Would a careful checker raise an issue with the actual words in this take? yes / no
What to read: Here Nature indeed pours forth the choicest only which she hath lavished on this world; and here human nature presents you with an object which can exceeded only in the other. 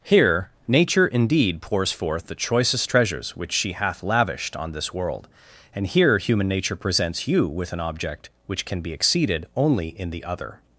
yes